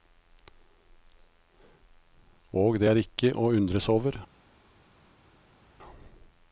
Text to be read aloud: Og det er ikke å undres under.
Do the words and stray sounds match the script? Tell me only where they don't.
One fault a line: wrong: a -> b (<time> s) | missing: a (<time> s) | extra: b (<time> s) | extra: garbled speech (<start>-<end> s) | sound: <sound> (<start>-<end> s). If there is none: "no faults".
wrong: under -> over (3.9 s)